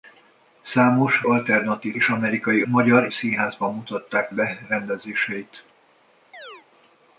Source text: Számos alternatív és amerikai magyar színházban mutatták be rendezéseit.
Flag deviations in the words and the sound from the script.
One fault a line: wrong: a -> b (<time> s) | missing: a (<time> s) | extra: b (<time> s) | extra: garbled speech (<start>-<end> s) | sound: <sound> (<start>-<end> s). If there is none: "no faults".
sound: chirp (6.3-6.7 s)